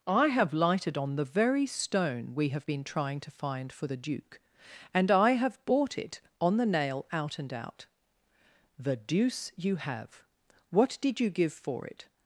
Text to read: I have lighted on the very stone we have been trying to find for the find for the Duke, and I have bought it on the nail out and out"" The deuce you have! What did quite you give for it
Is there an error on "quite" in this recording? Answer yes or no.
yes